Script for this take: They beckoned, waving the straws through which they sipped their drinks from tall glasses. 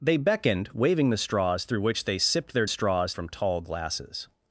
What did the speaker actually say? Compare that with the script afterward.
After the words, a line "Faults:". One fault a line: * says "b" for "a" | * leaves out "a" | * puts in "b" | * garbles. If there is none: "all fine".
They beckoned, waving the straws through which they sipped their straws from tall glasses.
Faults:
* says "straws" for "drinks"